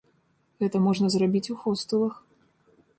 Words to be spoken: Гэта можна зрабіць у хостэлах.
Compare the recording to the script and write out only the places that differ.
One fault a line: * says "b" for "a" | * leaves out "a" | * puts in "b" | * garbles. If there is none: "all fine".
all fine